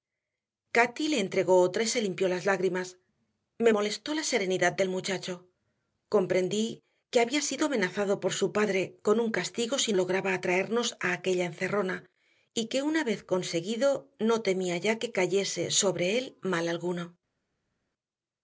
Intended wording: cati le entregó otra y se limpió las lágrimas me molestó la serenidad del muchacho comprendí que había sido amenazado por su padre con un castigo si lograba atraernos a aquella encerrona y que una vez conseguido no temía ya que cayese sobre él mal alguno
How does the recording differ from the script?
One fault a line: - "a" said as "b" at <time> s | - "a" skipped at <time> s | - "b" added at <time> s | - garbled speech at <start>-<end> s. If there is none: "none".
none